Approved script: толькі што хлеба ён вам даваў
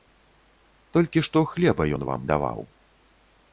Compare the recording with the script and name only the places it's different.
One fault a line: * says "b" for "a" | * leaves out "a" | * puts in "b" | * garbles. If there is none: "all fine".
all fine